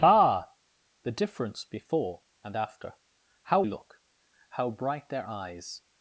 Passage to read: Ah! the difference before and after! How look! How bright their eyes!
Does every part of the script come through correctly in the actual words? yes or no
yes